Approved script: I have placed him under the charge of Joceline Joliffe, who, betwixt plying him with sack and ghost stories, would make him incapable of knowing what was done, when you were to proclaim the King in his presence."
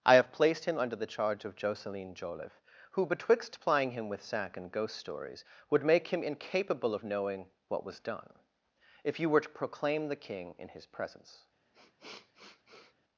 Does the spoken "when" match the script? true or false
false